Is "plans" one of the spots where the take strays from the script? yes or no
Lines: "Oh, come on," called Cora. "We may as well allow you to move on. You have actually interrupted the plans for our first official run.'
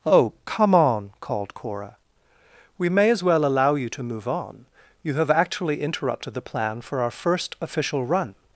yes